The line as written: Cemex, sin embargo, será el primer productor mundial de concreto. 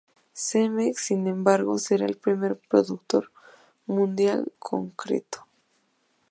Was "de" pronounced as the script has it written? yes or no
no